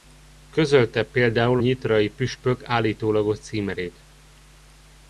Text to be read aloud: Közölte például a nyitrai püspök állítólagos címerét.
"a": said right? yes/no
no